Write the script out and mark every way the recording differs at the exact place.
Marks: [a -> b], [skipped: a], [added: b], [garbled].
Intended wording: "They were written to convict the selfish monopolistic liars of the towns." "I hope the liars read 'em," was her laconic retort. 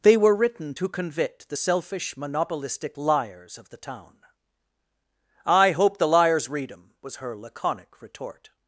"They were written to convict the selfish monopolistic liars of the [towns." -> town] "I hope the liars read 'em," was her laconic retort.